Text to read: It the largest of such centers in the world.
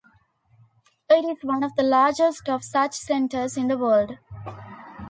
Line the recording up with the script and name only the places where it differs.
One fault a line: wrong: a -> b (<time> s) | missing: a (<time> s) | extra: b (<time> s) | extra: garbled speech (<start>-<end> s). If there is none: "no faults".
extra: is one of (1.2 s)